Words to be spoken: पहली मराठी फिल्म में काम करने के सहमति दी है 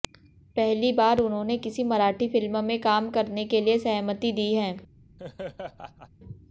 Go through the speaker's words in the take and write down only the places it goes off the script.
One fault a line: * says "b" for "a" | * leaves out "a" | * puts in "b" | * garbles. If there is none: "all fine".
* puts in "बार उन्होंने किसी"
* puts in "लिए"